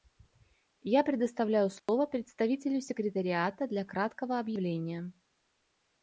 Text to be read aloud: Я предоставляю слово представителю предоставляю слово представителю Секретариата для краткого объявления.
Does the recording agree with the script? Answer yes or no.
no